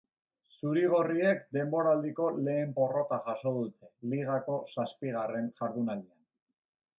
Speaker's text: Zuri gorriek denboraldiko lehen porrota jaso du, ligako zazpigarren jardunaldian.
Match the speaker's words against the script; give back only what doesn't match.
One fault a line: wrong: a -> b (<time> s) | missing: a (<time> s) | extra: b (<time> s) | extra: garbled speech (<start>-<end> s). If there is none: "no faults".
wrong: du -> dute (3.6 s)